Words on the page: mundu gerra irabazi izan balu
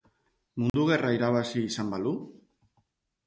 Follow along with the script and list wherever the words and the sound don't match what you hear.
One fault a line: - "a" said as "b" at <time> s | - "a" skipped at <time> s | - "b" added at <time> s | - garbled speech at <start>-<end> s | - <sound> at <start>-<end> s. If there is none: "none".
- dropout at 0.7-0.7 s